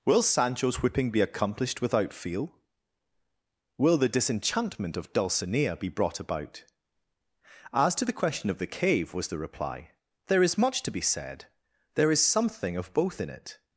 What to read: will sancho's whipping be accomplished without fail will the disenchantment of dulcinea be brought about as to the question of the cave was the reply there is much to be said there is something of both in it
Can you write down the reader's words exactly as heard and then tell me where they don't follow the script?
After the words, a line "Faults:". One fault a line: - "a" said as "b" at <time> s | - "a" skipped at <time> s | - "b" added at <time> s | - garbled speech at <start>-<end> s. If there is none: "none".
will sancho's whipping be accomplished without feel will the disenchantment of dulcinea be brought about as to the question of the cave was the reply there is much to be said there is something of both in it
Faults:
- "fail" said as "feel" at 2.1 s